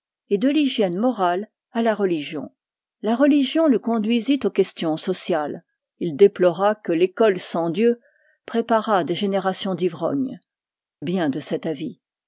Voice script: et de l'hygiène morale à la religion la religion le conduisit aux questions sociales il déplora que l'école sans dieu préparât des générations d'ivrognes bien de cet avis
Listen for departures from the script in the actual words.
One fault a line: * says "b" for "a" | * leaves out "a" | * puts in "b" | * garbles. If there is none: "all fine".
all fine